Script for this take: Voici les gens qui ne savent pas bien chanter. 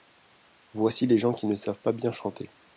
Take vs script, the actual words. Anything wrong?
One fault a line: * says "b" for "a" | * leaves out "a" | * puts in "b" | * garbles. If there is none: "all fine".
all fine